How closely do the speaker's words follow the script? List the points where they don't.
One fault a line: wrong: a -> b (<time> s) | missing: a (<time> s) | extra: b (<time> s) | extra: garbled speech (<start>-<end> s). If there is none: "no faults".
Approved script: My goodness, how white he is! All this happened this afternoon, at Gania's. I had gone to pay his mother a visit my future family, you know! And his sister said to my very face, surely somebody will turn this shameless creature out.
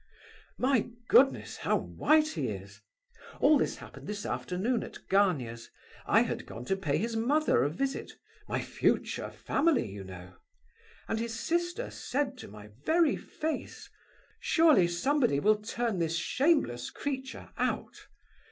no faults